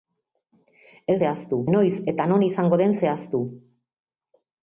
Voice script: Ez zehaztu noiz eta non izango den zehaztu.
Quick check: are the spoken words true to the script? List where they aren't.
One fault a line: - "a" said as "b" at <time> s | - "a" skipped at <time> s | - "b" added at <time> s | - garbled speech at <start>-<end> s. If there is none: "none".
none